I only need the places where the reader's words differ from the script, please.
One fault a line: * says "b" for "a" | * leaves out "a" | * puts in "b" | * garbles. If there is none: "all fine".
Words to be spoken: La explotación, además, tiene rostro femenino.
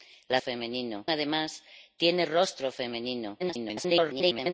* says "femenino" for "explotación"
* garbles